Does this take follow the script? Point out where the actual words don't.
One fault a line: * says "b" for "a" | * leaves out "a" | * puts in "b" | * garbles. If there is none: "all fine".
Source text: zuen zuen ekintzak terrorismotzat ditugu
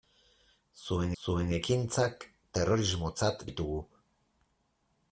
all fine